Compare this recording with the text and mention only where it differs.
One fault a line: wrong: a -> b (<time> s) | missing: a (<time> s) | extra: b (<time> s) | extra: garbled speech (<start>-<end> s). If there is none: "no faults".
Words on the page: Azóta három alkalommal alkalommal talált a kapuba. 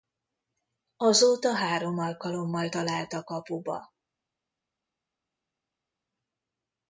missing: alkalommal (2.7 s)